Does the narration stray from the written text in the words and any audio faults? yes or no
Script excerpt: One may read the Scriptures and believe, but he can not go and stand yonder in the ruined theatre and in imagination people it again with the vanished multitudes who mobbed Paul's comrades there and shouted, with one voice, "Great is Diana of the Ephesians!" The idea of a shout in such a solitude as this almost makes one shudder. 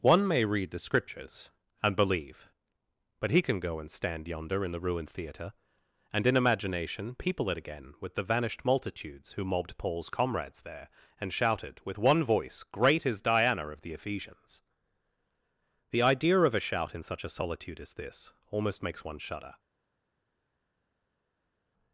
yes